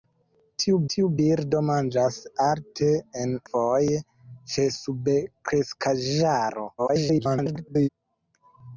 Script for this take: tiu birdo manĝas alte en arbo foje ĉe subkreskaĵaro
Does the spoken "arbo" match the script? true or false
false